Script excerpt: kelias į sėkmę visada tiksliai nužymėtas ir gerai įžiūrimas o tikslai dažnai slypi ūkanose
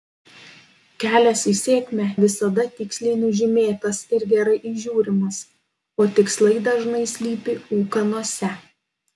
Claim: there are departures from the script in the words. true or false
false